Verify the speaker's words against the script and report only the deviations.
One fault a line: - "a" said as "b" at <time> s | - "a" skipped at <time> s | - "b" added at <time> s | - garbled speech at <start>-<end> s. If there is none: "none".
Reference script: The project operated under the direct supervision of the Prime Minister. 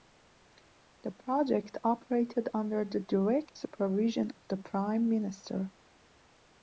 none